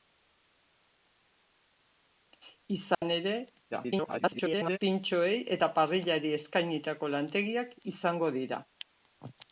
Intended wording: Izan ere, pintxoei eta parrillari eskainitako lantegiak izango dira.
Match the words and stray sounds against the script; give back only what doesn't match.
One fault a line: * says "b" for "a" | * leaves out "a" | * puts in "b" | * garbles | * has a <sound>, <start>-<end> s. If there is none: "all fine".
* has a dropout, 2.9-3.0 s
* garbles